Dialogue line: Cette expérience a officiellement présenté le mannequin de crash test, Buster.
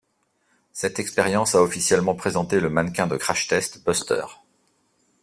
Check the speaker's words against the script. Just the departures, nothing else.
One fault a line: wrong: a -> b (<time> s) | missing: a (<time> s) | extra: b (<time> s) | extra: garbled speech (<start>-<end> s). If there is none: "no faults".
no faults